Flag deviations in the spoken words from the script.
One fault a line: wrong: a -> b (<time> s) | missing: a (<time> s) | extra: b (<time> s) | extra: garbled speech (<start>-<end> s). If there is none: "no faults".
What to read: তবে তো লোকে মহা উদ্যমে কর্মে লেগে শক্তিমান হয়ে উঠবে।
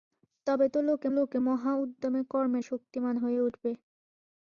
extra: লোকে (1.2 s)
missing: লেগে (2.6 s)